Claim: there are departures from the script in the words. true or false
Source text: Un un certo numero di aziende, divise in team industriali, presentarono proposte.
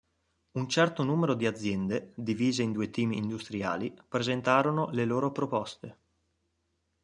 true